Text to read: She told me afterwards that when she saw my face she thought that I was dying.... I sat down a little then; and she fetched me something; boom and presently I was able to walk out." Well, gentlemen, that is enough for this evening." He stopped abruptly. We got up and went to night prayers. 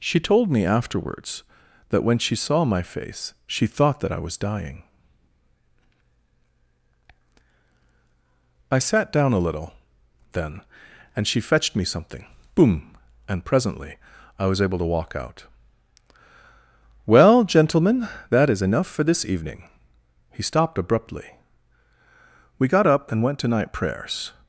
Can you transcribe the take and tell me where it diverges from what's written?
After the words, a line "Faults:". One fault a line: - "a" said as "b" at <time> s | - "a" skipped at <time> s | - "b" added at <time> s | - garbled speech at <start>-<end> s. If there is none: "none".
She told me afterwards that when she saw my face she thought that I was dying.... I sat down a little then; and she fetched me something; boom and presently I was able to walk out." Well, gentlemen, that is enough for this evening." He stopped abruptly. We got up and went to night prayers.
Faults:
none